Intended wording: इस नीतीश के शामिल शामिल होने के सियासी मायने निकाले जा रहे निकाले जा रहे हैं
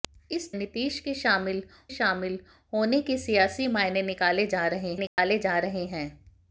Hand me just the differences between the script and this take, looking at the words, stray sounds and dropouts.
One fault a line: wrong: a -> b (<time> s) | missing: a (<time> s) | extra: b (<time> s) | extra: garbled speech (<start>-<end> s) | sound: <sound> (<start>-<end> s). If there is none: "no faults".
sound: dropout (5.1-5.2 s)